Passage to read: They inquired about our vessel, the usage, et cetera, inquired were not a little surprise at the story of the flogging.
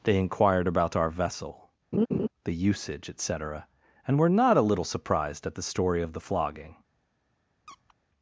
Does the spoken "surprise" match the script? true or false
false